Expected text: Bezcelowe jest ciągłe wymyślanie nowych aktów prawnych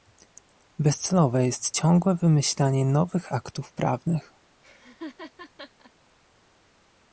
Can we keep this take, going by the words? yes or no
yes